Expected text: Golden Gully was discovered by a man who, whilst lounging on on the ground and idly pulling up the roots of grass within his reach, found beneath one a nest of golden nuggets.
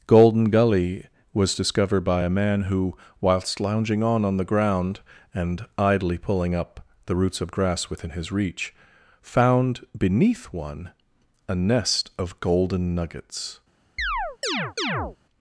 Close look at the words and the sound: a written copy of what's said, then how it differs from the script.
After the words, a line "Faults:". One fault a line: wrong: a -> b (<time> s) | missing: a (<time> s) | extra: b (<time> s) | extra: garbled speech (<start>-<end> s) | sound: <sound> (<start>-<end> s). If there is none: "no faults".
Golden Gully was discovered by a man who, whilst lounging on on the ground and idly pulling up the roots of grass within his reach, found beneath one a nest of golden nuggets.
Faults:
sound: chirp (14.0-15.2 s)